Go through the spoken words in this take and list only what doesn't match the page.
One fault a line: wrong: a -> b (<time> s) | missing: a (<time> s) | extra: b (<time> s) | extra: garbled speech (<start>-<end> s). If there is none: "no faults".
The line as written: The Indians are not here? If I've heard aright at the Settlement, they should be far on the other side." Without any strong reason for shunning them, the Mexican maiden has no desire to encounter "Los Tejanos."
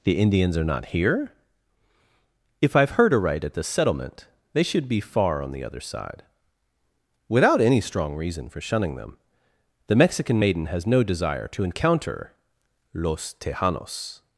no faults